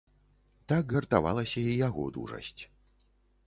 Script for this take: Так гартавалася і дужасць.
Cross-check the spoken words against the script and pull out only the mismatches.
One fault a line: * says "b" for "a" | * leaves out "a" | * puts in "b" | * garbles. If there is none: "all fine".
* puts in "яго"